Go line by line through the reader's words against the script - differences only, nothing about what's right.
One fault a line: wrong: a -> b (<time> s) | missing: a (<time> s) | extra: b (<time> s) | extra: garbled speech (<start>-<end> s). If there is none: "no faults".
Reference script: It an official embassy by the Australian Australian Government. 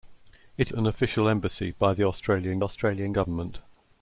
no faults